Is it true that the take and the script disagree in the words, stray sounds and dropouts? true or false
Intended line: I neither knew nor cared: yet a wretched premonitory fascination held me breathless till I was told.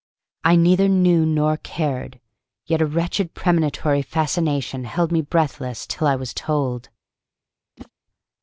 true